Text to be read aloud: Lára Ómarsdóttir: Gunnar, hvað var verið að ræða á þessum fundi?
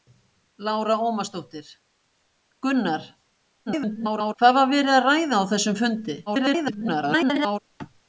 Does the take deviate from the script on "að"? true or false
false